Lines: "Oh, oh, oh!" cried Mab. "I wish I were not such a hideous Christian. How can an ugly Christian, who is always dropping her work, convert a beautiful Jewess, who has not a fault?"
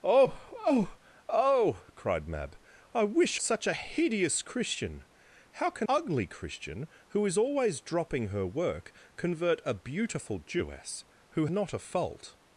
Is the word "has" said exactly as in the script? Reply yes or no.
no